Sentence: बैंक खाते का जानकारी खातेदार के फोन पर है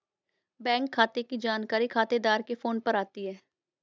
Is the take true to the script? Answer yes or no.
no